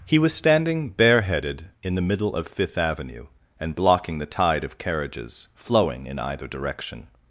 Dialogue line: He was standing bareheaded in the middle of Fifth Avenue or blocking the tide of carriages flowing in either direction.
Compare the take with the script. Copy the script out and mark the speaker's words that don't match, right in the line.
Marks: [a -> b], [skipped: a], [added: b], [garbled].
He was standing bareheaded in the middle of Fifth Avenue [or -> and] blocking the tide of carriages flowing in either direction.